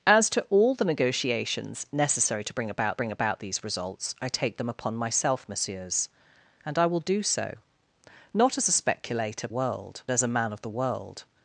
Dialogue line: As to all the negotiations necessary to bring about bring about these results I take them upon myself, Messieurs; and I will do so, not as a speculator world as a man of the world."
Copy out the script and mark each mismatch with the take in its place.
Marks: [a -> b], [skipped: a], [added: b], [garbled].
As to all the negotiations necessary to bring about bring about these results I take them upon myself, Messieurs; and I will do so, not as a speculator world as a man of the world."